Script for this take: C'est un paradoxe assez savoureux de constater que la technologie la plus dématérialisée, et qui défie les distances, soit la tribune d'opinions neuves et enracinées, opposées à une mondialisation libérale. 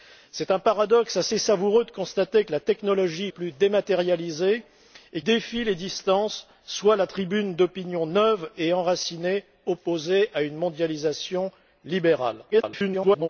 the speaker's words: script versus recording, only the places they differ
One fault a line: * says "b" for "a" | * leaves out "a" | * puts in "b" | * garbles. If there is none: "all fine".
* leaves out "la"
* leaves out "qui"
* garbles